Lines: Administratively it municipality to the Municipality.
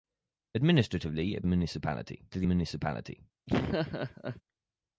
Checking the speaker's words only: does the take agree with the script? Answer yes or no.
yes